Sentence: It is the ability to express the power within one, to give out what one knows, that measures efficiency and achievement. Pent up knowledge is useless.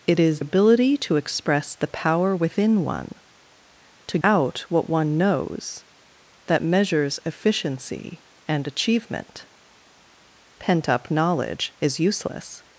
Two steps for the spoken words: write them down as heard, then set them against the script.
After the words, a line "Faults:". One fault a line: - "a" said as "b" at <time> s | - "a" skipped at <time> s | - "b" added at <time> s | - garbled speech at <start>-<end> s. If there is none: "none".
It is ability to express the power within one, to out what one knows, that measures efficiency and achievement. Pent up knowledge is useless.
Faults:
- "the" skipped at 0.4 s
- "give" skipped at 4.2 s